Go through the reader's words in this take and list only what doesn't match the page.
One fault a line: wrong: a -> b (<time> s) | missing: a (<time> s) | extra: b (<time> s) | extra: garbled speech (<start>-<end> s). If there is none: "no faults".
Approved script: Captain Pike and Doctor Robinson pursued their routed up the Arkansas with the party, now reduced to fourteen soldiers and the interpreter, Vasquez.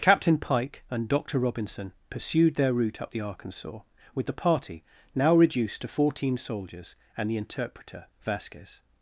wrong: routed -> route (2.7 s)